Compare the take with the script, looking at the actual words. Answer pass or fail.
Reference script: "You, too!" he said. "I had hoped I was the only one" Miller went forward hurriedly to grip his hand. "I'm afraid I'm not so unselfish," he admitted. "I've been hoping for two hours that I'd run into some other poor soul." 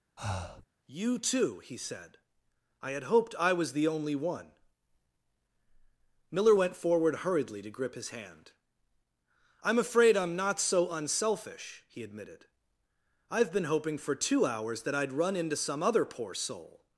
pass